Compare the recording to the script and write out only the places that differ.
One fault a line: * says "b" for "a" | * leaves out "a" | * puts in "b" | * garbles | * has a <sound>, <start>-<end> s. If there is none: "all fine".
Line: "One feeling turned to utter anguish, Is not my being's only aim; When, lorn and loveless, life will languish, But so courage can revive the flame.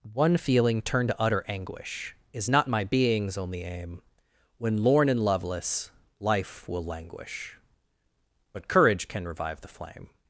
* leaves out "so"